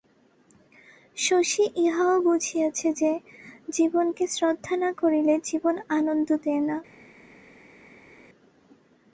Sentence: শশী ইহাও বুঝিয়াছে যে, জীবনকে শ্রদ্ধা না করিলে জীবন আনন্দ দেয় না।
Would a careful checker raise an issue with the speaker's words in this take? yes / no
no